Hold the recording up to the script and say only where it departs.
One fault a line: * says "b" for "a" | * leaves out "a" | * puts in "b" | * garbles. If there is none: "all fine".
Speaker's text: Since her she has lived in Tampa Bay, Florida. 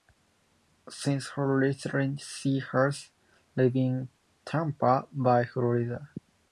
* puts in "retirement"